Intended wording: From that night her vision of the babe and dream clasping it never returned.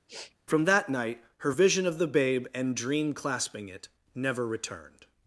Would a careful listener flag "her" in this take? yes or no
no